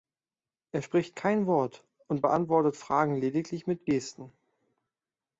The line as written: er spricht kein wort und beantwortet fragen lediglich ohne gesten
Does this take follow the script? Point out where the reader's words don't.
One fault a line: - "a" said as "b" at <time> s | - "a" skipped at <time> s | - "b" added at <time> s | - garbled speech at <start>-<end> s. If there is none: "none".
- "ohne" said as "mit" at 3.7 s